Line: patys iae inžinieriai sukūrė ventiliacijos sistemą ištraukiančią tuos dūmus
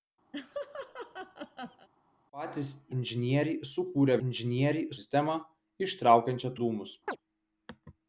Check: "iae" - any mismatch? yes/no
yes